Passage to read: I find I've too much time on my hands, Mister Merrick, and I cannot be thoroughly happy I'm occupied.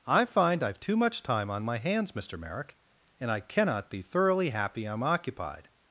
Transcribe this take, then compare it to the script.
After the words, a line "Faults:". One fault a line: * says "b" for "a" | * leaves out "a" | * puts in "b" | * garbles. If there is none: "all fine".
I find I've too much time on my hands, Mister Merrick, and I cannot be thoroughly happy I'm occupied.
Faults:
all fine